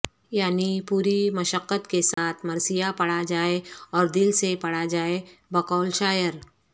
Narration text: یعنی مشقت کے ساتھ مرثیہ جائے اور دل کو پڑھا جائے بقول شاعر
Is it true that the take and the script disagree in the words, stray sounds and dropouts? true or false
true